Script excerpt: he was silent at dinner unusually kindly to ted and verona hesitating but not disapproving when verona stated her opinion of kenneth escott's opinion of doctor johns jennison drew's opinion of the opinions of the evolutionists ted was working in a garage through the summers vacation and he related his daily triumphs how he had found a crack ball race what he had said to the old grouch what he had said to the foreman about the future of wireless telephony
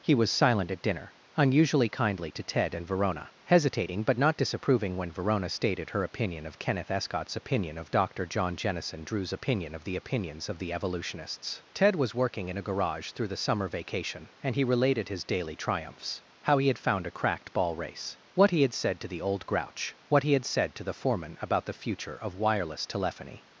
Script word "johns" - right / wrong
wrong